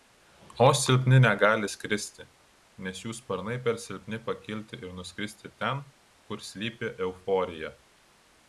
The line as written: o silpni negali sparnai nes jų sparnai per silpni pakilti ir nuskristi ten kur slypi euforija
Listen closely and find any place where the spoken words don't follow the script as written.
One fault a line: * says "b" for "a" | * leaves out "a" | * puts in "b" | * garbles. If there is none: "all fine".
* says "skristi" for "sparnai"